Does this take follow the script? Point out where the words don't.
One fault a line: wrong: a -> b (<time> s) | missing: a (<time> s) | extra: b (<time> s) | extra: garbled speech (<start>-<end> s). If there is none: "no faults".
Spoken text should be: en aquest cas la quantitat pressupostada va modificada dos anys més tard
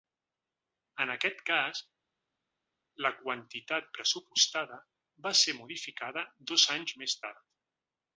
extra: ser (5.5 s)